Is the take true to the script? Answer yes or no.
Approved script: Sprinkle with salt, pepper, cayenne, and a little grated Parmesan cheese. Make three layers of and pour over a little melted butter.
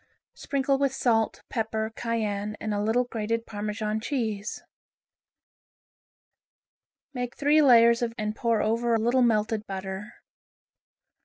yes